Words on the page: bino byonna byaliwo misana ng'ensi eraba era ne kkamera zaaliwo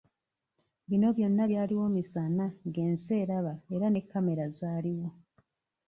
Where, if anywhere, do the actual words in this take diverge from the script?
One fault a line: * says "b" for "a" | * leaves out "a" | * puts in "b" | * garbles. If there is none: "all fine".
all fine